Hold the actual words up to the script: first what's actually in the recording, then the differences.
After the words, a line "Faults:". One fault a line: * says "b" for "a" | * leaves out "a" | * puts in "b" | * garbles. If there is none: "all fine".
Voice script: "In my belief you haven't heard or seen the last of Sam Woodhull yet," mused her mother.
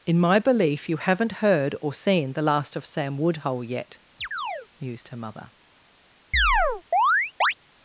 "In my belief you haven't heard or seen the last of Sam Woodhull yet," mused her mother.
Faults:
all fine